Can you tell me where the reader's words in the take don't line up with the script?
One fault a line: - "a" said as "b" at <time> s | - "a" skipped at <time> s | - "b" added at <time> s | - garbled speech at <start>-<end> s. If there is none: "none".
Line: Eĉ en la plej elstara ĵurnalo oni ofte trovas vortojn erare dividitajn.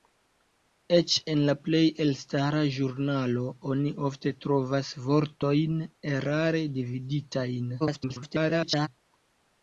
- garbled speech at 7.8-8.9 s